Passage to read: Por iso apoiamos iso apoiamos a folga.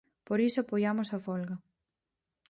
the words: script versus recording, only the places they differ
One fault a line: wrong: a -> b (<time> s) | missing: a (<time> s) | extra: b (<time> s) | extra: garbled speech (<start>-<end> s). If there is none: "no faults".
missing: iso apoiamos (1.1 s)